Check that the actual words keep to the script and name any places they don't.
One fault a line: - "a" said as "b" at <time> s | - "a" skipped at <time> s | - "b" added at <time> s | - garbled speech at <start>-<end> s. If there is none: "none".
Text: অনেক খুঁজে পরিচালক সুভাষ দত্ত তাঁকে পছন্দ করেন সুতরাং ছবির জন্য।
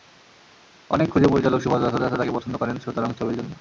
- "দত্ত" added at 2.0 s